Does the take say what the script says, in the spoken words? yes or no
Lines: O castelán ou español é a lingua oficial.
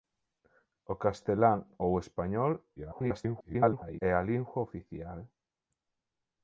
no